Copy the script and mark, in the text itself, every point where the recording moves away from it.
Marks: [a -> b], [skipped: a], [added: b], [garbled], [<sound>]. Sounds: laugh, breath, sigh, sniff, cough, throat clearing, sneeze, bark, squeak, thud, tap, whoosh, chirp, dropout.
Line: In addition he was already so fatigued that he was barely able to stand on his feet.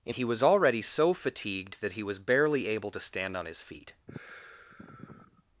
In [skipped: addition] he was already so fatigued that he was barely able to stand on his feet. [sigh]